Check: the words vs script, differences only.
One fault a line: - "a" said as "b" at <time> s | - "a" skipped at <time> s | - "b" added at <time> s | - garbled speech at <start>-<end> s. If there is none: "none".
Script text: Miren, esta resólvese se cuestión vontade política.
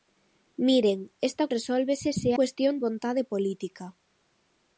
none